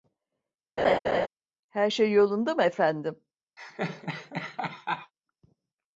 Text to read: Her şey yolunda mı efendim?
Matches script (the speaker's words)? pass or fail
pass